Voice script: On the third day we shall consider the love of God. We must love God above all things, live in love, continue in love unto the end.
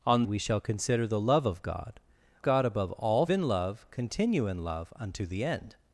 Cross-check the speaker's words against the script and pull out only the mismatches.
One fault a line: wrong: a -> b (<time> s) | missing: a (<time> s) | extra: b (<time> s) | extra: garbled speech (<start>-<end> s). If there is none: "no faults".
missing: the third day (0.2 s)
missing: We must love (2.0 s)
missing: things live (3.2 s)